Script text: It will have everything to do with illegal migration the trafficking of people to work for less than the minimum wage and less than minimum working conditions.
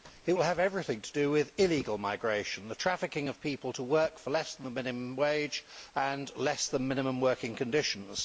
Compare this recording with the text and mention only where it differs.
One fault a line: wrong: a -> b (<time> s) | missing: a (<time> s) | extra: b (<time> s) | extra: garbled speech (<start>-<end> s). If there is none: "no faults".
no faults